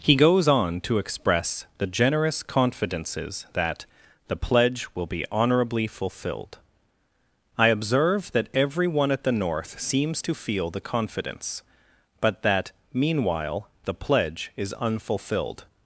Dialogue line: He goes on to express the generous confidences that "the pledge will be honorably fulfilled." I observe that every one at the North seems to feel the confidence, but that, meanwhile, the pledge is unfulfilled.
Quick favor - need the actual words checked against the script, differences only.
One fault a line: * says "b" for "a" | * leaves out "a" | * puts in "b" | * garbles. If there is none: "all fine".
all fine